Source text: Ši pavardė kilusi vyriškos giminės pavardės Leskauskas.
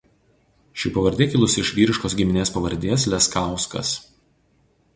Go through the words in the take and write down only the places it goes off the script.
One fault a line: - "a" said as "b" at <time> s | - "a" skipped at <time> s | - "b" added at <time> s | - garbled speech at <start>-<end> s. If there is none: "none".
- "iš" added at 1.6 s